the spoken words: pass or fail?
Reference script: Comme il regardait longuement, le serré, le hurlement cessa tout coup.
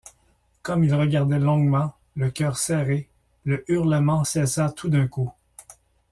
fail